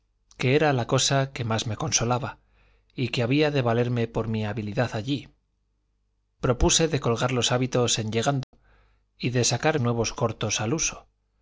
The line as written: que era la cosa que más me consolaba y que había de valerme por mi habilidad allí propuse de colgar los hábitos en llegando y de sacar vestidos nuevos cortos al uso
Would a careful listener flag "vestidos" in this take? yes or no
yes